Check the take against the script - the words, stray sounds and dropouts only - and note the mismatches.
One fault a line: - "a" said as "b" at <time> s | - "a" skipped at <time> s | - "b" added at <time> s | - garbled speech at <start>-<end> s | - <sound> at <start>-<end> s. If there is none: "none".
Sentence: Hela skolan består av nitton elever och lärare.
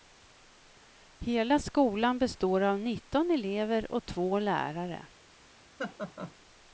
- "två" added at 4.0 s
- laugh at 5.8-6.3 s